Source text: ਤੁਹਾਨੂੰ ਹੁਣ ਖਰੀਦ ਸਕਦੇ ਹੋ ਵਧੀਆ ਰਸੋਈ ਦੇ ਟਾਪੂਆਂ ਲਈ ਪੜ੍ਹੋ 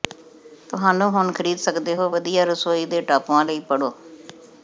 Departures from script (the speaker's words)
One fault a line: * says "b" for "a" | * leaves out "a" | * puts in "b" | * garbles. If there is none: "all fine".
all fine